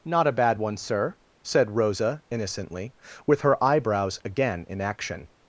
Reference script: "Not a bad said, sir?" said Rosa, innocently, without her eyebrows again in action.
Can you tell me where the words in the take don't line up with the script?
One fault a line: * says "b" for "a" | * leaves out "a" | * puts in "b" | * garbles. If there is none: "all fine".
* says "one" for "said"
* says "with" for "without"